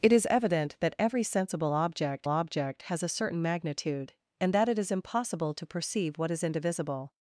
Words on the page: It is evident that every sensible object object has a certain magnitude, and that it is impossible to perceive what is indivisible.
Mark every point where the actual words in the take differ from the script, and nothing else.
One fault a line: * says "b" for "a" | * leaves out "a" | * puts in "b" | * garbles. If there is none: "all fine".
all fine